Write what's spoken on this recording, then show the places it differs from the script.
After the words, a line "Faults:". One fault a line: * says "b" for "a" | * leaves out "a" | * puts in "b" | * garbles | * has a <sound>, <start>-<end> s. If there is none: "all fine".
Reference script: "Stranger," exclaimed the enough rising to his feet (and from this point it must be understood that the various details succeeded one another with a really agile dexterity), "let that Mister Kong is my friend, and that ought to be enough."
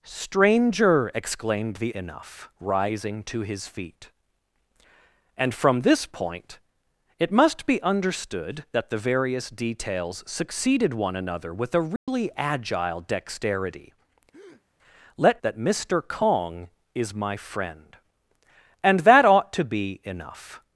"Stranger," exclaimed the enough rising to his feet (and from this point it must be understood that the various details succeeded one another with a really agile dexterity), "let that Mister Kong is my friend, and that ought to be enough."
Faults:
* has a dropout, 12.0-12.1 s
* has a breath, 14.3-14.6 s